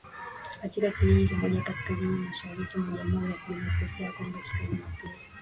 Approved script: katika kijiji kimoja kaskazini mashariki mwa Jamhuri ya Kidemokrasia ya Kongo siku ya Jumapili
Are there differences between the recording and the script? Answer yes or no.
no